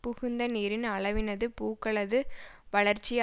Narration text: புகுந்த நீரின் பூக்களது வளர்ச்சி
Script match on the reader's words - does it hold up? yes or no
no